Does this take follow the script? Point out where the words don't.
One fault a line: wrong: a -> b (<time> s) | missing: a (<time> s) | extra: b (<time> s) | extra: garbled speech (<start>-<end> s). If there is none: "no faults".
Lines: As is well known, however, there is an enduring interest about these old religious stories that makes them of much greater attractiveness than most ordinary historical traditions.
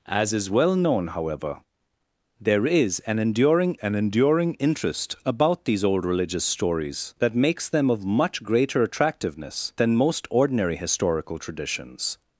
extra: an enduring (3.8 s)